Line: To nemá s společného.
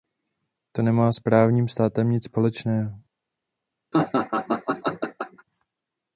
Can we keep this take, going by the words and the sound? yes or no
no